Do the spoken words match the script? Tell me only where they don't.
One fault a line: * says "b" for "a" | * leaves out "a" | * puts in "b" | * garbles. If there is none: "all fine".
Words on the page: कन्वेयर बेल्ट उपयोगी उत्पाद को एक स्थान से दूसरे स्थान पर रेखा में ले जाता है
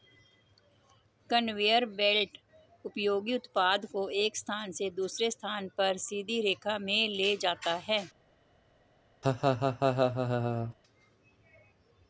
* puts in "सीधी"